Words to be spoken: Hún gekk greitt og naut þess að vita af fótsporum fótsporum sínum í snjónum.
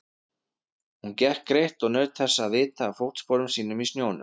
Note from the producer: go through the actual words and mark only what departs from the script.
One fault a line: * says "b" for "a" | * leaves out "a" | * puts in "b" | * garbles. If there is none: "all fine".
* leaves out "fótsporum"